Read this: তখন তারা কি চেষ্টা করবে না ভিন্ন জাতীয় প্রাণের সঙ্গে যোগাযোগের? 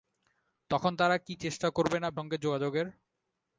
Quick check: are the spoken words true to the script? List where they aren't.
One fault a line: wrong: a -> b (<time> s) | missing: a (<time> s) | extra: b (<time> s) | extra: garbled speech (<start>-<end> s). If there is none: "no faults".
missing: ভিন্ন জাতীয় প্রাণের (2.1 s)